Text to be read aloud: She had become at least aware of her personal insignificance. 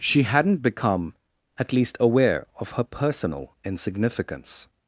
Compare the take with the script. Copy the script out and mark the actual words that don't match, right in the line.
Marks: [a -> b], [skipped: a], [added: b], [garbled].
She [had -> hadn't] become at least aware of her personal insignificance.